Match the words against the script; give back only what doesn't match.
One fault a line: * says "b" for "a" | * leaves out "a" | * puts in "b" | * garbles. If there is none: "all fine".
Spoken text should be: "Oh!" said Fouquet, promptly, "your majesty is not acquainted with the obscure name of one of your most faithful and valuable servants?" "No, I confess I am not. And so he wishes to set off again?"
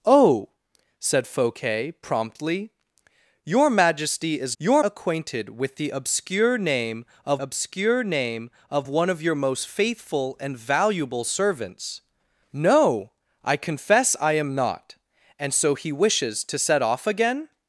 * says "your" for "not"
* puts in "obscure name of"